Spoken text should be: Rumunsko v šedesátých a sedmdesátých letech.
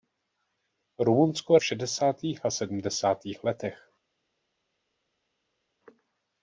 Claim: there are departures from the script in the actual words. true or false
false